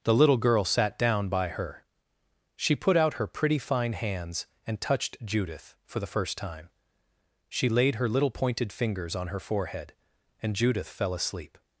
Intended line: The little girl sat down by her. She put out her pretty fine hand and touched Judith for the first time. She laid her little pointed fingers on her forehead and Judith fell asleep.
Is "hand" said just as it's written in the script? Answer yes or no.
no